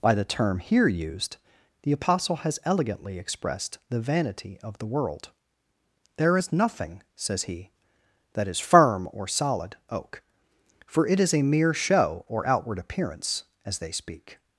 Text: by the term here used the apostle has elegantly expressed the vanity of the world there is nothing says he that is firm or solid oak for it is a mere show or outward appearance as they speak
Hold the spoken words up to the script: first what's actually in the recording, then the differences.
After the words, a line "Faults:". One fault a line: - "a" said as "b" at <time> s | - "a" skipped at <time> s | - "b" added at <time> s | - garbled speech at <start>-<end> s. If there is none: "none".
by the term here used the apostle has elegantly expressed the vanity of the world there is nothing says he that is firm or solid oak for it is a mere show or outward appearance as they speak
Faults:
none